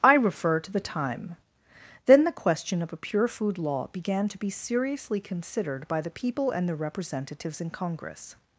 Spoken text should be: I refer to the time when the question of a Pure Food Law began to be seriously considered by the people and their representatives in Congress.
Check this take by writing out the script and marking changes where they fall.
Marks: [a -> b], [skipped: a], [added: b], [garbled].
I refer to the time [when -> then] the question of a Pure Food Law began to be seriously considered by the people and their representatives in Congress.